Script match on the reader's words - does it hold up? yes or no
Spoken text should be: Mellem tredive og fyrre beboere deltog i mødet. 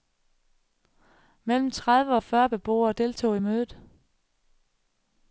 yes